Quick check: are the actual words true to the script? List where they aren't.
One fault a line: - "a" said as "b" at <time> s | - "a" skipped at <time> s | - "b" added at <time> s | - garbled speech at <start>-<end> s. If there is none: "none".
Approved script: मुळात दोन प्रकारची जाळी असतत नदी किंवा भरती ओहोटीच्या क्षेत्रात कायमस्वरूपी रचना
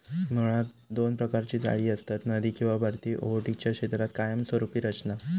none